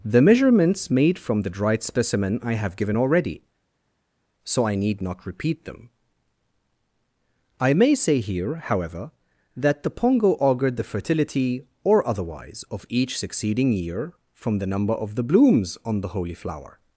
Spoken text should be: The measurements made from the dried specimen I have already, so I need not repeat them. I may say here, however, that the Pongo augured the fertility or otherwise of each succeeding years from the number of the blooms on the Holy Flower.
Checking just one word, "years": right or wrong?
wrong